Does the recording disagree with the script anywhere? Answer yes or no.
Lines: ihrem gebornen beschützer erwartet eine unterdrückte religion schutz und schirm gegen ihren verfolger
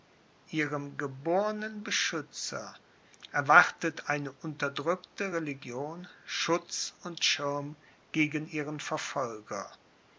no